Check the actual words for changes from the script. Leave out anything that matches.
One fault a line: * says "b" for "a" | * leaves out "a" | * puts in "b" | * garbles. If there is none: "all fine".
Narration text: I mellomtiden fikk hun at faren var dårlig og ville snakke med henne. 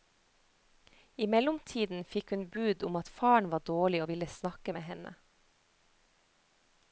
* puts in "bud om"